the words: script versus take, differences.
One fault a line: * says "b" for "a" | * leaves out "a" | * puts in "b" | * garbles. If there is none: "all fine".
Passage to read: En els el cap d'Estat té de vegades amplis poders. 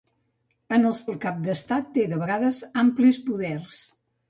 all fine